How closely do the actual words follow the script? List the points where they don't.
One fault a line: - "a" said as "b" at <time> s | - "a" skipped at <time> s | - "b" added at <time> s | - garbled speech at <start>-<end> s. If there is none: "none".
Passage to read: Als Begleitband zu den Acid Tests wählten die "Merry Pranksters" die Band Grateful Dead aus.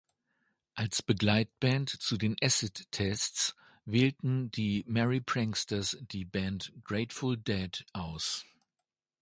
none